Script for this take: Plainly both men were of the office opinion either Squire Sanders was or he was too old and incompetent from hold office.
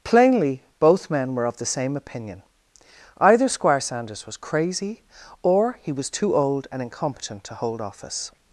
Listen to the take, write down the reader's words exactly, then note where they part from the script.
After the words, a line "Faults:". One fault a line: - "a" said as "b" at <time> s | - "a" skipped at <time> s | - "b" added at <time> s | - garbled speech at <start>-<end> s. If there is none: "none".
Plainly both men were of the same opinion either Squire Sanders was crazy or he was too old and incompetent to hold office.
Faults:
- "office" said as "same" at 1.6 s
- "crazy" added at 4.3 s
- "from" said as "to" at 7.4 s